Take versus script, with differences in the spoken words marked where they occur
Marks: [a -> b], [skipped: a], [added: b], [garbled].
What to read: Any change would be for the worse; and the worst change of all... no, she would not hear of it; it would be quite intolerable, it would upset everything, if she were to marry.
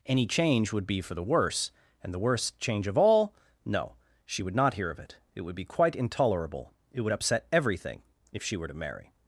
Any change would be for the worse; and the worst change of all... no, she would not hear of it; it would be quite intolerable, it would upset everything, if she were to marry.